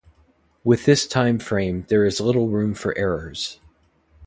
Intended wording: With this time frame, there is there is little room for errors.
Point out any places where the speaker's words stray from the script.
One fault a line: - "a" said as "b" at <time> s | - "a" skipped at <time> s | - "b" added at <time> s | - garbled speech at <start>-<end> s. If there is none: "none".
- "there is" skipped at 2.2 s